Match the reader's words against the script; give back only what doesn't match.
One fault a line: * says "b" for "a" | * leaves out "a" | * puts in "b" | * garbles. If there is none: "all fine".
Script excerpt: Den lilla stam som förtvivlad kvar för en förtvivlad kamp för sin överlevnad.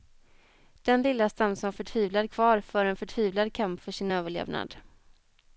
all fine